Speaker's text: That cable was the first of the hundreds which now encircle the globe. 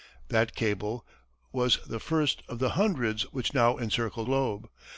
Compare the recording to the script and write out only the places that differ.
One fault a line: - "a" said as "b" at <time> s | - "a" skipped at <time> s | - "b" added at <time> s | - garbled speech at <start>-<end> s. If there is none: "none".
- "the" skipped at 4.2 s